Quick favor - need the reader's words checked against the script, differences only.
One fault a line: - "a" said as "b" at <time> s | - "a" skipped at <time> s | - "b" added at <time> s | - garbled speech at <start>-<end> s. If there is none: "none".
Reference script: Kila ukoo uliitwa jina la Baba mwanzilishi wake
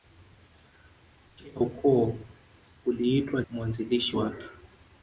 - "jina la Baba" skipped at 3.4 s